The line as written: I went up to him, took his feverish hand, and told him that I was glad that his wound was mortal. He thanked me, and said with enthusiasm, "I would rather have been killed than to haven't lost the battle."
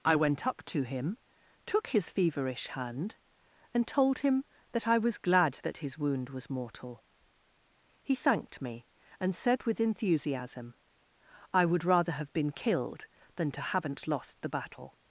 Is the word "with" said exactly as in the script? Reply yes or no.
yes